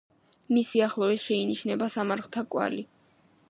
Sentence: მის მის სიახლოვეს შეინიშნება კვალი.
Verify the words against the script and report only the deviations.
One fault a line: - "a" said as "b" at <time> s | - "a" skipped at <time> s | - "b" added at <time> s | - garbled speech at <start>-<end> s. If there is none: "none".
- "მის" skipped at 0.7 s
- "სამარხთა" added at 1.9 s